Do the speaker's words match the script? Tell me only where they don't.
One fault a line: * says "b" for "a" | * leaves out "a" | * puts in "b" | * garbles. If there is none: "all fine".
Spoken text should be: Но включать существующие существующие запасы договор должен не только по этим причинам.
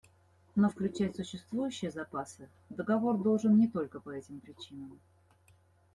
* leaves out "существующие"